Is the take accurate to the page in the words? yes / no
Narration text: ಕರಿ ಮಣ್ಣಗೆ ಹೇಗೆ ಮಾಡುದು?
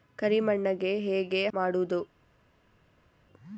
yes